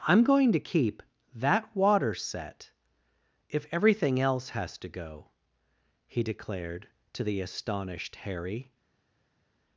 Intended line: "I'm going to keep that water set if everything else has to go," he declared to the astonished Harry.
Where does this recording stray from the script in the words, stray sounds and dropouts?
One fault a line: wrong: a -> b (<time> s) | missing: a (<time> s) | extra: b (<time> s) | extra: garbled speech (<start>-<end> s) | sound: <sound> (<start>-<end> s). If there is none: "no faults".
no faults